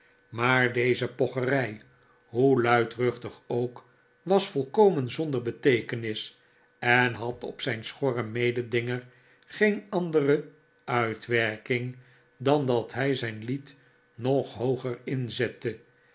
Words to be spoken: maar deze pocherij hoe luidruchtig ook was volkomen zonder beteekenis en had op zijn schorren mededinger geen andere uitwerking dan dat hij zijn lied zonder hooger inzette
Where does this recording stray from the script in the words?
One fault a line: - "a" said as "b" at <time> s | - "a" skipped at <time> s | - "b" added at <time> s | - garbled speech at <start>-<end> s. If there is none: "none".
- "zonder" said as "nog" at 14.1 s